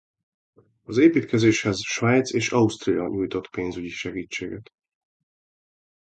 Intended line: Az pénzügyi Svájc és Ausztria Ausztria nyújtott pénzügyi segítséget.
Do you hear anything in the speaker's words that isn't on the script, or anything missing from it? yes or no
yes